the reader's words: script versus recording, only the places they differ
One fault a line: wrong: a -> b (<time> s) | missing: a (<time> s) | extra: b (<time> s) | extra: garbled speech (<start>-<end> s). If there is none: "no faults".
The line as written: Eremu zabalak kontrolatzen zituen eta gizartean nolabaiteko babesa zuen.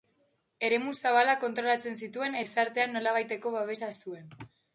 missing: eta (2.4 s)